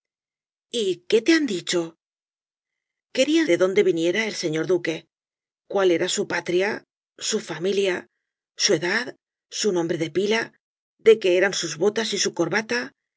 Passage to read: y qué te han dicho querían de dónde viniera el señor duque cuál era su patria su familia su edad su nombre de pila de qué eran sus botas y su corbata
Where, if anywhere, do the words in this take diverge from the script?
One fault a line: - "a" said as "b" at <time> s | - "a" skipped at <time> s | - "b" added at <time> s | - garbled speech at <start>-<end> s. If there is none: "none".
none